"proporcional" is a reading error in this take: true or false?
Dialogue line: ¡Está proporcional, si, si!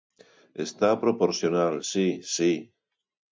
false